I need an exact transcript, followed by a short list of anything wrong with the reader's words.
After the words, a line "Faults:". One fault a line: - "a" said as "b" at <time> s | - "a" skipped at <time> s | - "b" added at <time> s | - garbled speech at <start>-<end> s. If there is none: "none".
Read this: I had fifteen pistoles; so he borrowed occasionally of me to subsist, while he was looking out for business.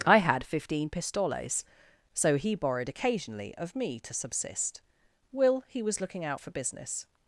I had fifteen pistoles; so he borrowed occasionally of me to subsist, will he was looking out for business.
Faults:
- "while" said as "will" at 5.3 s